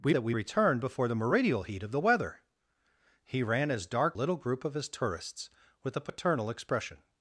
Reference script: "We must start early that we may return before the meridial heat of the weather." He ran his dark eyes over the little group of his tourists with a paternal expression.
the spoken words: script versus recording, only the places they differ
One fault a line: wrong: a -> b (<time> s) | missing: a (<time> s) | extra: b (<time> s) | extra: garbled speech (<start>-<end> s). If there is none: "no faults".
missing: must start early (0.1 s)
missing: may (0.3 s)
missing: eyes over the (4.2 s)